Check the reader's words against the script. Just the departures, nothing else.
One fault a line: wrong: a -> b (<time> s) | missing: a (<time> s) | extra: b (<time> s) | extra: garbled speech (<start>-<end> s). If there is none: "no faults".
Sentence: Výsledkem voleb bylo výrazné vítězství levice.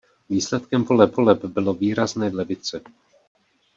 extra: voleb (1.1 s)
missing: vítězství (2.3 s)